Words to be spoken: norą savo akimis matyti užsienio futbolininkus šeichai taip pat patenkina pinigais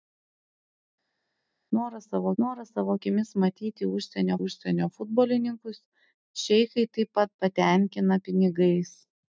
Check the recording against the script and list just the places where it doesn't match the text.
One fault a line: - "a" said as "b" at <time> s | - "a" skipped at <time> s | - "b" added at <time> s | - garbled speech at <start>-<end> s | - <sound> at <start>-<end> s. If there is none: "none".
- "norą savo" added at 2.4 s
- "užsienio" added at 4.5 s